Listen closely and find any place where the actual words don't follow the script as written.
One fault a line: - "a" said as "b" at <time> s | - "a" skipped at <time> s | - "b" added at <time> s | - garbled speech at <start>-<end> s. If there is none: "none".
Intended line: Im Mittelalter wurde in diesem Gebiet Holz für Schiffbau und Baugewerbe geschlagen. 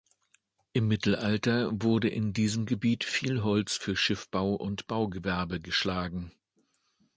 - "viel" added at 3.0 s